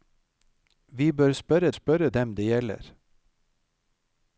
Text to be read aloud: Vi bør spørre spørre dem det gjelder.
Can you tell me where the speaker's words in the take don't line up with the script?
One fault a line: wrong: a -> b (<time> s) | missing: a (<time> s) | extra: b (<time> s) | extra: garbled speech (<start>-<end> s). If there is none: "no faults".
no faults